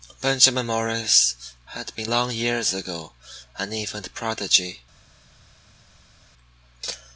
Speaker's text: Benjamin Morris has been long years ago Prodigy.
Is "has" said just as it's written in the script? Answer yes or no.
no